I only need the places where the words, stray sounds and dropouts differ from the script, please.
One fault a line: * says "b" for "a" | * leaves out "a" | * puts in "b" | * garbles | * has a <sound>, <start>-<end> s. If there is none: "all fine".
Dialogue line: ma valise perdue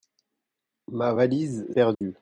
* has a dropout, 1.9-2.0 s